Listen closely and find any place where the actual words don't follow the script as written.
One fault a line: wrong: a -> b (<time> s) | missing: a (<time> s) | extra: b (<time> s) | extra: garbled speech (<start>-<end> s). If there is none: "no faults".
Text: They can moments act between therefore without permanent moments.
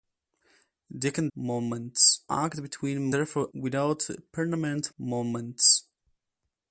no faults